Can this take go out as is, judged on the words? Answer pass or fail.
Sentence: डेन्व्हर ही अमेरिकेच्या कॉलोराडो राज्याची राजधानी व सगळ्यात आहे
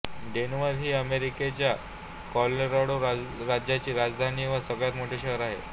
fail